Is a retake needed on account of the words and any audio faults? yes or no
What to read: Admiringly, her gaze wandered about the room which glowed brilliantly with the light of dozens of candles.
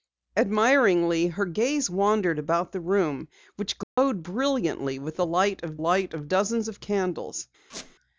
yes